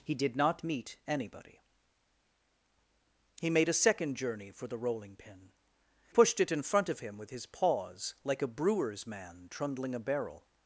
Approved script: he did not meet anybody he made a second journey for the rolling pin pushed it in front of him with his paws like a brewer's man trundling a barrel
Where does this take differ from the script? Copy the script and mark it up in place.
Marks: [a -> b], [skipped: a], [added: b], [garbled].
he did not meet anybody he made a second journey for the rolling pin pushed it in front of him with his paws like a brewer's man trundling a barrel